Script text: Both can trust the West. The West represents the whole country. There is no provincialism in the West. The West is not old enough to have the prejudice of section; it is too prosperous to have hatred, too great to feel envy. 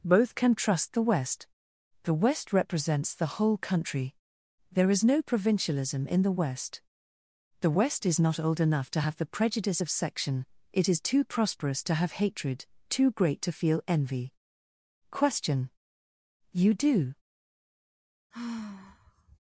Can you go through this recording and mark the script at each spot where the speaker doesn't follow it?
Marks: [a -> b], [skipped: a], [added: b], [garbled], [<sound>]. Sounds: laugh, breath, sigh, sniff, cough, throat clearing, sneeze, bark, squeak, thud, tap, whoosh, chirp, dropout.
Both can trust the West. The West represents the whole country. There is no provincialism in the West. The West is not old enough to have the prejudice of section; it is too prosperous to have hatred, too great to feel envy. [added: Question You do] [sigh]